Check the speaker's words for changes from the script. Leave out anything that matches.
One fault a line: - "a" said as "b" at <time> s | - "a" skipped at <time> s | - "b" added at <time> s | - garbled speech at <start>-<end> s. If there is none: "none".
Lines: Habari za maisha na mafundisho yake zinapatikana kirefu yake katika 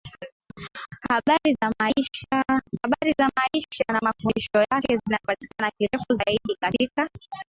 - "yake" said as "zaidi" at 6.1 s